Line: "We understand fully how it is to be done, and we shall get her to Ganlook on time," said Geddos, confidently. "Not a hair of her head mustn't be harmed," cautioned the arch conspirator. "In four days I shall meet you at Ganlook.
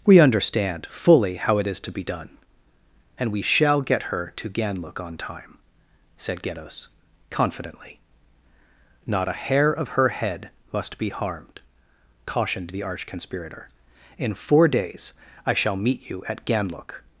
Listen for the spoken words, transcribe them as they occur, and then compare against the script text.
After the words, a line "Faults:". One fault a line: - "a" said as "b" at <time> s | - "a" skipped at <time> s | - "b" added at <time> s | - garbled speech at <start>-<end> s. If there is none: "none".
"We understand fully how it is to be done, and we shall get her to Ganlook on time," said Geddos, confidently. "Not a hair of her head must be harmed," cautioned the arch conspirator. "In four days I shall meet you at Ganlook.
Faults:
- "mustn't" said as "must" at 10.7 s